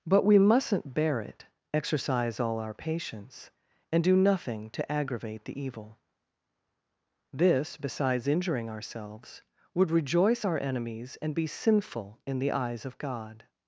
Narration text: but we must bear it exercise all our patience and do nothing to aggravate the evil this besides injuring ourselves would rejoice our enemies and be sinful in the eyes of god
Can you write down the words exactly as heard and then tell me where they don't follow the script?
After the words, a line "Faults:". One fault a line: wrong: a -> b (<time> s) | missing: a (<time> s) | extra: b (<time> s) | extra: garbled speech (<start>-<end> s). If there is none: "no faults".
but we mustn't bear it exercise all our patience and do nothing to aggravate the evil this besides injuring ourselves would rejoice our enemies and be sinful in the eyes of god
Faults:
wrong: must -> mustn't (0.4 s)